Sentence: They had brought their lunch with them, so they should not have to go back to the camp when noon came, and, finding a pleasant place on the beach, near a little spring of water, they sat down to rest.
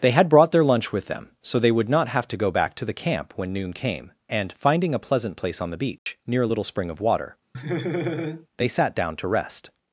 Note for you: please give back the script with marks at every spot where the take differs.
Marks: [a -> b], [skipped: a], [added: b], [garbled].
They had brought their lunch with them, so they [should -> would] not have to go back to the camp when noon came, and, finding a pleasant place on the beach, near a little spring of water, they sat down to rest.